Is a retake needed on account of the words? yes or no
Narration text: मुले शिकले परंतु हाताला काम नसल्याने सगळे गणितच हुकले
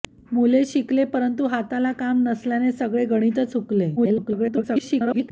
yes